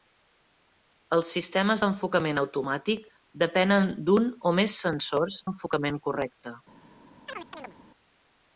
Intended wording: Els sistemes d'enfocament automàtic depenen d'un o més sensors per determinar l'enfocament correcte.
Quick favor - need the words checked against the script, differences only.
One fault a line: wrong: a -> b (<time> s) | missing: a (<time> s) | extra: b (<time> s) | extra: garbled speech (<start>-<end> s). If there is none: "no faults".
missing: per determinar (5.4 s)